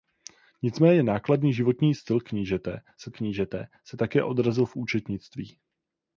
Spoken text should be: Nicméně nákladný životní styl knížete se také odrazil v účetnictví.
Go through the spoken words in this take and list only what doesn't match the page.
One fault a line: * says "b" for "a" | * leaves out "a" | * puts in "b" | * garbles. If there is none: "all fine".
* puts in "knížete se"